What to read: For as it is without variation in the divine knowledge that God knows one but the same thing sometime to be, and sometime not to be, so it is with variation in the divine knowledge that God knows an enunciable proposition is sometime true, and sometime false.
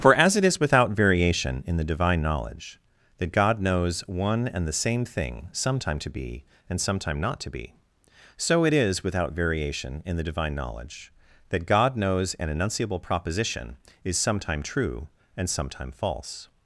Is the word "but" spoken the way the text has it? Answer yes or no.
no